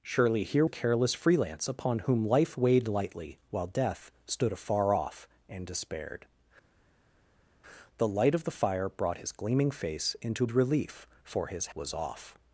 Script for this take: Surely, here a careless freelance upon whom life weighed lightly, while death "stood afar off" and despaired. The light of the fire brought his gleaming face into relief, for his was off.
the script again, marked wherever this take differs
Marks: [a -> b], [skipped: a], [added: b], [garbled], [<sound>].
Surely, here a careless freelance upon whom life weighed lightly, while death "stood afar off" and despaired. The light of the fire brought his gleaming face into relief, for his was off.